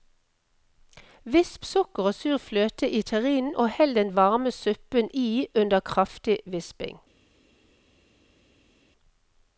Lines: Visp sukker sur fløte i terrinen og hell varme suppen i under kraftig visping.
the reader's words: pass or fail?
fail